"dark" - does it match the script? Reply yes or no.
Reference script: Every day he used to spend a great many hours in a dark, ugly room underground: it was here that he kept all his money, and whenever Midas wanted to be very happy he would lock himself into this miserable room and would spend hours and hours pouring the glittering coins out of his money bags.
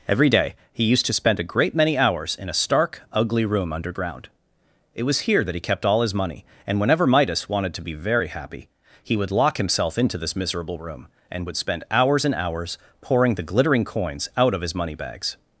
no